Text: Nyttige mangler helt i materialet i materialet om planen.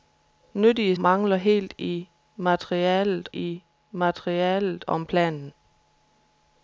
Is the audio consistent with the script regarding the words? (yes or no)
yes